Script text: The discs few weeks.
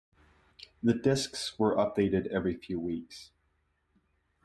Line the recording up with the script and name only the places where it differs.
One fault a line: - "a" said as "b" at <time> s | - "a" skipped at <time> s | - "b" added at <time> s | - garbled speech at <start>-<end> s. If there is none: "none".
- "were updated every" added at 1.6 s